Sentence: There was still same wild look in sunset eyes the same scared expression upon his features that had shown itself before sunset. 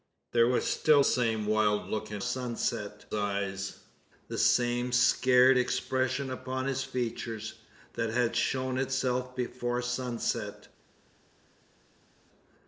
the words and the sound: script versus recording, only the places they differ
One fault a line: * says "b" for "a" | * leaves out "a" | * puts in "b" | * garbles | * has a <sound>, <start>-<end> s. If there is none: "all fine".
all fine